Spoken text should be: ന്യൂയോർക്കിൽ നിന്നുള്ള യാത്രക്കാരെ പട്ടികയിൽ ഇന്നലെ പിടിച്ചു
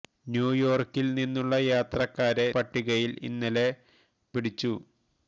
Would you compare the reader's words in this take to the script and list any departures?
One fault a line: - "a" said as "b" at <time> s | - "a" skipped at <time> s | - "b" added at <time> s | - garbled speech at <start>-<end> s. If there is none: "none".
none